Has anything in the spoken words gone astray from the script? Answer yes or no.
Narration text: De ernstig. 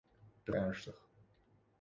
no